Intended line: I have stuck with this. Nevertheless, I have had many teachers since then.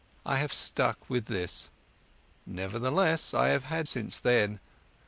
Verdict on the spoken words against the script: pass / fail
fail